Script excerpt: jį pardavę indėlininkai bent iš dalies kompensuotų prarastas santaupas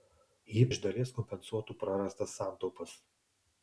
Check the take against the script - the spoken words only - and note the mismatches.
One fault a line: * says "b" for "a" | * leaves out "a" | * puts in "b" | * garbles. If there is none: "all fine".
* leaves out "pardavę indėlininkai bent"